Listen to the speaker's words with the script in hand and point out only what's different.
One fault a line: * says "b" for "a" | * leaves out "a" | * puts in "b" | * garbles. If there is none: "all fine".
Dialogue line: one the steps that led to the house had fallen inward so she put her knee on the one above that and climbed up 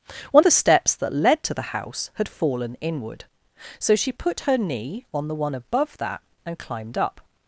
all fine